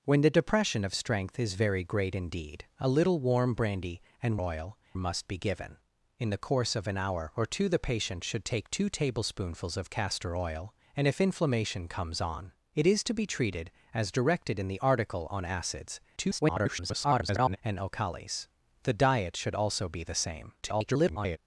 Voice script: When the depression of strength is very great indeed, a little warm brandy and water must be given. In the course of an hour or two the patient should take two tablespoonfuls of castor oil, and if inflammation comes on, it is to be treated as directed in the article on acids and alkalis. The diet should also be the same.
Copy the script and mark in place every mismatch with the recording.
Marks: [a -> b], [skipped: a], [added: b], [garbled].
When the depression of strength is very great indeed, a little warm brandy and [water -> oil] must be given. In the course of an hour or two the patient should take two tablespoonfuls of castor oil, and if inflammation comes on, it is to be treated as directed in the article on acids [garbled] and alkalis. The diet should also be the same. [garbled]